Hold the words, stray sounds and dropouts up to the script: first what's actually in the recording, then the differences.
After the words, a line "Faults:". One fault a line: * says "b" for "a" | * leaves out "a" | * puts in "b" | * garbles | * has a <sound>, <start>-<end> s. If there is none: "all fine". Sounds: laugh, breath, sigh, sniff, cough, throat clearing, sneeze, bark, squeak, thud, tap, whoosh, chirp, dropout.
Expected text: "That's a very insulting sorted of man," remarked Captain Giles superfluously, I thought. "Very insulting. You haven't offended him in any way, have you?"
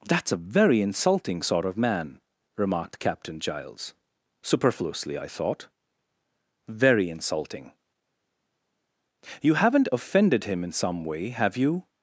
"That's a very insulting sort of man," remarked Captain Giles superfluously, I thought. "Very insulting. You haven't offended him in some way, have you?"
Faults:
* says "sort" for "sorted"
* says "some" for "any"